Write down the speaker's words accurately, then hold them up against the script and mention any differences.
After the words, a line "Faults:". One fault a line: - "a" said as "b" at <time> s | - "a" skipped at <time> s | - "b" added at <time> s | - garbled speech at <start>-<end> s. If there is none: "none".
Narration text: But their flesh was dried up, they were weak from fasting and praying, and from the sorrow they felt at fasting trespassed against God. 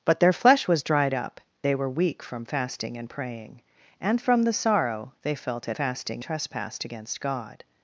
But their flesh was dried up, they were weak from fasting and praying, and from the sorrow they felt at fasting trespassed against God.
Faults:
none